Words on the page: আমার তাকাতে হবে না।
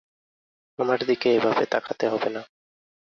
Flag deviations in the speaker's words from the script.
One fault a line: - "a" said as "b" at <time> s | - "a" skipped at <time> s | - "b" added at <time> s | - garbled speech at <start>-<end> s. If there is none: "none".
- "দিকে এভাবে" added at 1.1 s